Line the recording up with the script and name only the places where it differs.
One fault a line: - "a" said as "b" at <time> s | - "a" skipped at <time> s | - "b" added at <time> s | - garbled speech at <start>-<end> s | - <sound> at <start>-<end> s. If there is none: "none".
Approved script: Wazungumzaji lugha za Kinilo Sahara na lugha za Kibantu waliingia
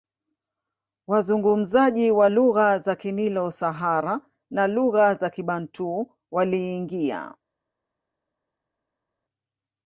- "wa" added at 2.1 s